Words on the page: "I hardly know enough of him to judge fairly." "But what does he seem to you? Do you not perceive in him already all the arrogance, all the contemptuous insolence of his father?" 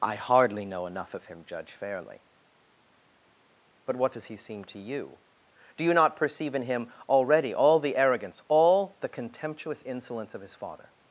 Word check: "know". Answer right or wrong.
right